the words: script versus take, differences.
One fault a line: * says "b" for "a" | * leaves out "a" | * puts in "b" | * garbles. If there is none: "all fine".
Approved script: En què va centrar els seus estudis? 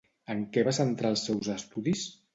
all fine